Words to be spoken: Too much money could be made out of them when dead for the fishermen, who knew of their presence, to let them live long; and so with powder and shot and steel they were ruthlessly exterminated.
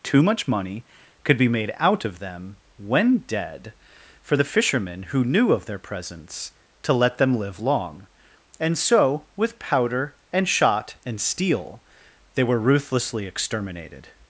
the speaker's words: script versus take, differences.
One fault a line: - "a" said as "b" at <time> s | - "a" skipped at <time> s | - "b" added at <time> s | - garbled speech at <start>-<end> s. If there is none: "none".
none